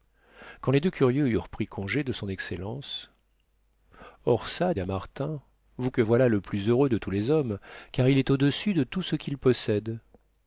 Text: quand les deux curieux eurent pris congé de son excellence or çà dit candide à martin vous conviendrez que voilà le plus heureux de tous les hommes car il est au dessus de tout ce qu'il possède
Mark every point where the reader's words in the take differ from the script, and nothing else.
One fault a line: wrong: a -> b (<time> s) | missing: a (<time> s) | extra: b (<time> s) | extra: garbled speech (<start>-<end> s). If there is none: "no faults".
missing: dit candide (4.7 s)
missing: conviendrez (5.9 s)